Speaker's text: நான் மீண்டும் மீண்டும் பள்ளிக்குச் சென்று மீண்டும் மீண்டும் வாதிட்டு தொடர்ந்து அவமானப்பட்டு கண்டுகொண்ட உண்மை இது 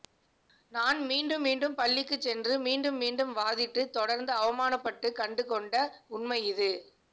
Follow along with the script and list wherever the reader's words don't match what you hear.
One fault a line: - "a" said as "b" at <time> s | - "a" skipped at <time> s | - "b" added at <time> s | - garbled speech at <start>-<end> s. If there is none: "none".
none